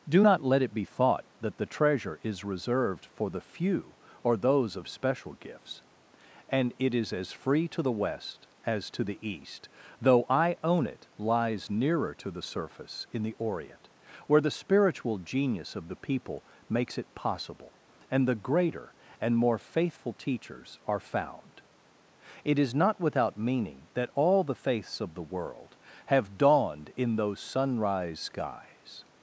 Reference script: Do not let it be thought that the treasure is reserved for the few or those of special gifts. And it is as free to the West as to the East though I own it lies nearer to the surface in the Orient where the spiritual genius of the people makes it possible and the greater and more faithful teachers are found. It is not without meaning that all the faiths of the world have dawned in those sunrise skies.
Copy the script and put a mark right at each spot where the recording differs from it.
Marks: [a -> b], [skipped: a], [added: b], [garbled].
Do not let it be thought that the treasure is reserved for the few or those of special gifts. And it is as free to the West as to the East though I own it lies nearer to the surface in the Orient where the spiritual genius of the people makes it possible and the greater and more faithful teachers are found. It is not without meaning that all the faiths of the world have dawned in those sunrise skies.